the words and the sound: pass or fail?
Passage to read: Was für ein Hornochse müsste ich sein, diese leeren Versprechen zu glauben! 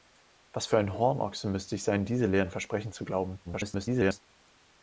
fail